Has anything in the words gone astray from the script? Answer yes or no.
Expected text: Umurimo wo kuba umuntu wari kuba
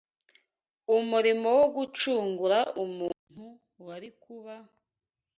yes